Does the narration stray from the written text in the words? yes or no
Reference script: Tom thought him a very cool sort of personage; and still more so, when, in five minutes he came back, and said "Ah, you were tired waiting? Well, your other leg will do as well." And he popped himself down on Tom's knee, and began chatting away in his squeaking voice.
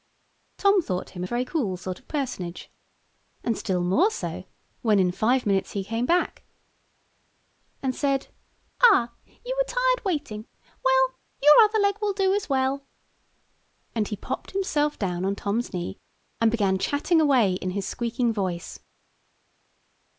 no